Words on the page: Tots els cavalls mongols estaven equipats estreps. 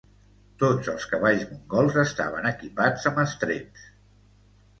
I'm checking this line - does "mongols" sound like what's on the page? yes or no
yes